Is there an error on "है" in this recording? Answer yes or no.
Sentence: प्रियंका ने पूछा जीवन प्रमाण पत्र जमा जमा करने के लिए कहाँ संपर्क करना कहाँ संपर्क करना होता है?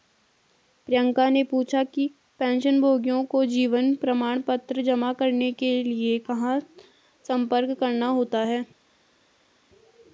no